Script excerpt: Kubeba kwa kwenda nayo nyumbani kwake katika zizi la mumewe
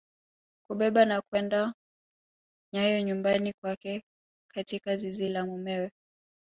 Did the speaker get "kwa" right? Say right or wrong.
wrong